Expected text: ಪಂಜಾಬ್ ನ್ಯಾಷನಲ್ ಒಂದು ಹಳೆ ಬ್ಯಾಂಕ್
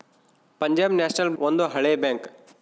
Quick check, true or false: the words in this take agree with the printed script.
true